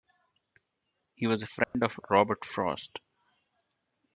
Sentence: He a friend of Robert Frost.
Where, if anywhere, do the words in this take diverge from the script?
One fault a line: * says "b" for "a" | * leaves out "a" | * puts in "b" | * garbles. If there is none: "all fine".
* puts in "was"